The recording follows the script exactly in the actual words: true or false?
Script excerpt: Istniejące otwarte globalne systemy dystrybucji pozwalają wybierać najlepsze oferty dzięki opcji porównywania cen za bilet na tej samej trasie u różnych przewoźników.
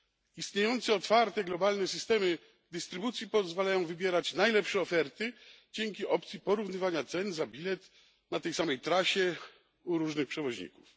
true